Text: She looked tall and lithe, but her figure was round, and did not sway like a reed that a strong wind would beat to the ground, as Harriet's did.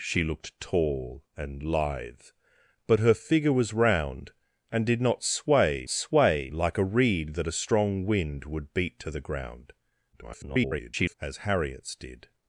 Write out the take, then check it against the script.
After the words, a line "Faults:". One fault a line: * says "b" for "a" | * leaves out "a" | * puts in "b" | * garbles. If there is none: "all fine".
She looked tall and lithe, but her figure was round, and did not sway sway like a reed that a strong wind would beat to the ground, [garbled] as Harriet's did.
Faults:
* puts in "sway"
* garbles